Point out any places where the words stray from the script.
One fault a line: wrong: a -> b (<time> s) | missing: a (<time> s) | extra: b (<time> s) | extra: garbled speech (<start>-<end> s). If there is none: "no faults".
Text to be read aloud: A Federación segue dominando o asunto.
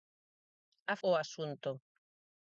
missing: Federación segue dominando (0.9 s)